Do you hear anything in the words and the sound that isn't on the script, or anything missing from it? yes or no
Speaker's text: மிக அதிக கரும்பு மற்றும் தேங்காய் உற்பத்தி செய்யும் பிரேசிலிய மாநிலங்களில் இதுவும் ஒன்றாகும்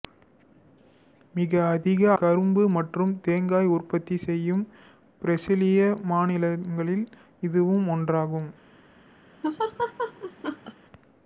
yes